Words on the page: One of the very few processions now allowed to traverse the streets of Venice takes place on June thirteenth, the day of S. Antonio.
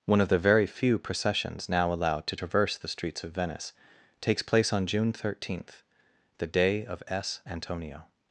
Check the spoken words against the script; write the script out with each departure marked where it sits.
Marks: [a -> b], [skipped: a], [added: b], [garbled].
One of the very few processions now allowed to traverse the streets of Venice takes place on June thirteenth, the day of S. Antonio.